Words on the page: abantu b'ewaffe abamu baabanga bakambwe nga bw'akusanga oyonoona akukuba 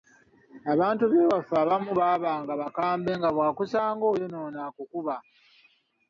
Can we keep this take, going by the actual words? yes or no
yes